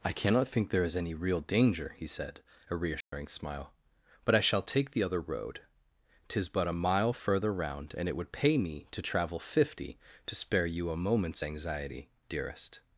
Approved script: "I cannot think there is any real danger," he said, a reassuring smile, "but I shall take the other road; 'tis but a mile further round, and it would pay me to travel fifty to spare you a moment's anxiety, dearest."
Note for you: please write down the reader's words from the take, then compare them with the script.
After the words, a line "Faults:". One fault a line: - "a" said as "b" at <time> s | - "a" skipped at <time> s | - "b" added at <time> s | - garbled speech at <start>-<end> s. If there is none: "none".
"I cannot think there is any real danger," he said, a reassuring smile, "but I shall take the other road; 'tis but a mile further round, and it would pay me to travel fifty to spare you a moment's anxiety, dearest."
Faults:
none